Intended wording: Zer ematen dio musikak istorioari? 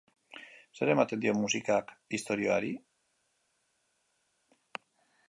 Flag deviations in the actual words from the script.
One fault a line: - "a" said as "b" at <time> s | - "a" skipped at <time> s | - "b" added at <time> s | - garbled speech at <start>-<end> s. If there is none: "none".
none